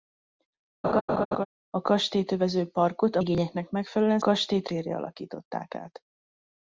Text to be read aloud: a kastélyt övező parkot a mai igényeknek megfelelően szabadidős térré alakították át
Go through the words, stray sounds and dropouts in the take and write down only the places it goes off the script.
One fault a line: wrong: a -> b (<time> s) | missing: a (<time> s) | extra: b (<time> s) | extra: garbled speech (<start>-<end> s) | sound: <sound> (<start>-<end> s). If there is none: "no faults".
sound: laugh (0.8-1.5 s)
missing: mai (3.2 s)
wrong: szabadidős -> kastélyt (4.2 s)